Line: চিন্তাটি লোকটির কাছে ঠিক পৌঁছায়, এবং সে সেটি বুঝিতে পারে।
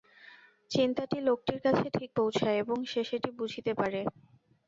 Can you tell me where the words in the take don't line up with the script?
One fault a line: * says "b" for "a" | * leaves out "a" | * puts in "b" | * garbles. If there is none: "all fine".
all fine